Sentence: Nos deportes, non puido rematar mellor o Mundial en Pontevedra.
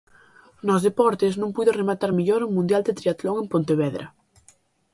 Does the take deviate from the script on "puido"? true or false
false